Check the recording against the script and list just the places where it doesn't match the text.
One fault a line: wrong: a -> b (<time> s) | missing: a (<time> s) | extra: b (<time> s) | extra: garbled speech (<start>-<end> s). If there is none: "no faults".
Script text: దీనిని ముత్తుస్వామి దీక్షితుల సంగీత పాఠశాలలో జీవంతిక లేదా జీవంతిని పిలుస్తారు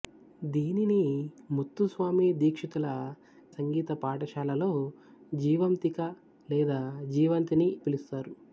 no faults